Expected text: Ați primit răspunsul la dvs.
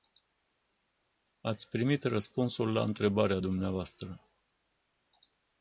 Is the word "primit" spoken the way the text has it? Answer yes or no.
yes